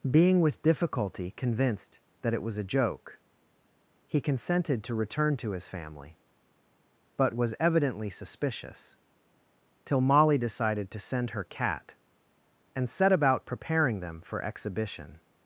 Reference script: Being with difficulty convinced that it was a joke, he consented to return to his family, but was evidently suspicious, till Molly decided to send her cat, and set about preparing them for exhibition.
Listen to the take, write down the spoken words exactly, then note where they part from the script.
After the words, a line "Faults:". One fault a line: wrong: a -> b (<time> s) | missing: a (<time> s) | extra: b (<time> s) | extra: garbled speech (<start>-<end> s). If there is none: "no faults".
Being with difficulty convinced that it was a joke, he consented to return to his family, but was evidently suspicious, till Molly decided to send her cat, and set about preparing them for exhibition.
Faults:
no faults